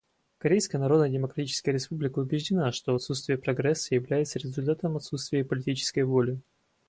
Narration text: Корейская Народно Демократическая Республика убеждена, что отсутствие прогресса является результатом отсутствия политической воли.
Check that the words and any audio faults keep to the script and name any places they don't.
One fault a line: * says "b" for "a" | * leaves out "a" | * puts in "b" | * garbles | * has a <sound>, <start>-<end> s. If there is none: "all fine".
all fine